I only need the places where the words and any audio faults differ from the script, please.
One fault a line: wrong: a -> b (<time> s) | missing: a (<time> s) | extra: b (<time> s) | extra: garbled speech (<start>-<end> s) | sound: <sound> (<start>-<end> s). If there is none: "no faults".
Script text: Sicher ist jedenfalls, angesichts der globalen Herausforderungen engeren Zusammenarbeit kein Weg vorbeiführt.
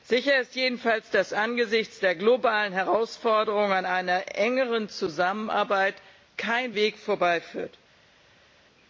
extra: dass (1.1 s)
extra: an einer (3.7 s)